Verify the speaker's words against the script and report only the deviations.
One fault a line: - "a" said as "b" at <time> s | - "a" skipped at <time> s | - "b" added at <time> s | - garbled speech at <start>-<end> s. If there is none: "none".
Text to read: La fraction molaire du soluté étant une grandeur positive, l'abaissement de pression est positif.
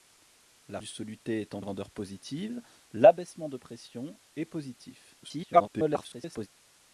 - "fraction molaire" skipped at 0.8 s
- "une" skipped at 1.6 s
- garbled speech at 5.2-6.5 s